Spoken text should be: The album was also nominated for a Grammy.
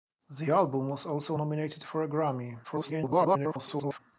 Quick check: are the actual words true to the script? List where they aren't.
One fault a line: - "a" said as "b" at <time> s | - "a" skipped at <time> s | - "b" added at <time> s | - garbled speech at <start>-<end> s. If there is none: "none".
- garbled speech at 2.6-4.0 s